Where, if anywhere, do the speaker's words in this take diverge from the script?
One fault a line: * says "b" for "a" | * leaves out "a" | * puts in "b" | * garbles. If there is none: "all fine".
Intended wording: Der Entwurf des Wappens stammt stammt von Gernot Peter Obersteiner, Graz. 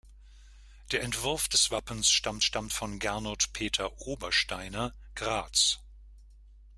all fine